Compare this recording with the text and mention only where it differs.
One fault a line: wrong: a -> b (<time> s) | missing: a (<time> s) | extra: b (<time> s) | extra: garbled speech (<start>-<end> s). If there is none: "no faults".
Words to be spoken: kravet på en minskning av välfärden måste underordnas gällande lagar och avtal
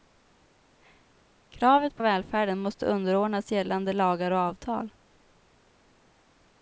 missing: en minskning (2.0 s)